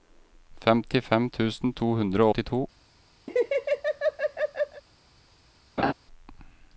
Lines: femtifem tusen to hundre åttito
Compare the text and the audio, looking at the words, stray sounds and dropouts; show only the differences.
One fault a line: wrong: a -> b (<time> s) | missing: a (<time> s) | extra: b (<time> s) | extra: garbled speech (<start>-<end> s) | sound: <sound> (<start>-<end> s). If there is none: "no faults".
sound: laugh (3.3-4.8 s)
sound: laugh (5.8-5.9 s)